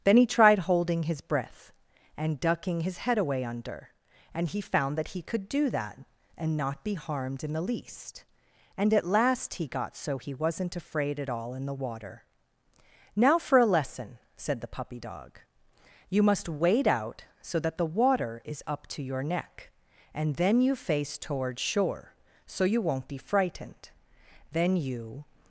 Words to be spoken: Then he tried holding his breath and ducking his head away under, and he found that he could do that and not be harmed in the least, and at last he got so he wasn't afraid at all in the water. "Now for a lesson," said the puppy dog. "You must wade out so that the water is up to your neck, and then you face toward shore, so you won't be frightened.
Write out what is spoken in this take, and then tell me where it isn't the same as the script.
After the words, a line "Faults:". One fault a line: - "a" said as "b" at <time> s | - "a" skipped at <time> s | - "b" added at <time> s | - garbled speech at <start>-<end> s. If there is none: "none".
Then he tried holding his breath and ducking his head away under, and he found that he could do that and not be harmed in the least, and at last he got so he wasn't afraid at all in the water. "Now for a lesson," said the puppy dog. "You must wade out so that the water is up to your neck, and then you face toward shore, so you won't be frightened. Then you
Faults:
- "Then you" added at 24.5 s